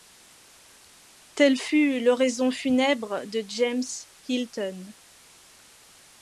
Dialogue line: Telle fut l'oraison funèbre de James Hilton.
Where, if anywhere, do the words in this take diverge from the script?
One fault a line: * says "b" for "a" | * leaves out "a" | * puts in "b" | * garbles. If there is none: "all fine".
all fine